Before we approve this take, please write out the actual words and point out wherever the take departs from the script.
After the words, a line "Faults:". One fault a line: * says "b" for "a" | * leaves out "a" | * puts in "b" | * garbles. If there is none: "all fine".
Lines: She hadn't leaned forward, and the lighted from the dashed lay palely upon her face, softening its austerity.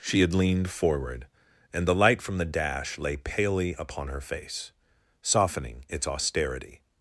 She had leaned forward, and the light from the dash lay palely upon her face, softening its austerity.
Faults:
* says "had" for "hadn't"
* says "light" for "lighted"
* says "dash" for "dashed"